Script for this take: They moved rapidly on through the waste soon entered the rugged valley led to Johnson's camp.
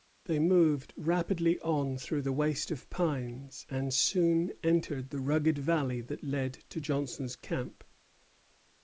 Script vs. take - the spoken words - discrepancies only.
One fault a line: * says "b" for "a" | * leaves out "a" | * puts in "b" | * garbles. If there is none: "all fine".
* puts in "of pines and"
* puts in "that"